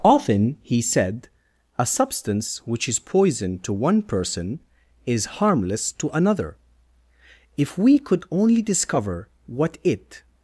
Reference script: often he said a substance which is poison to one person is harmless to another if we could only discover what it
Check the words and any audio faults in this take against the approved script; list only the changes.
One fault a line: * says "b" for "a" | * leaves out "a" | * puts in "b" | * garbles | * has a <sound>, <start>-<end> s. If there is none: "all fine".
all fine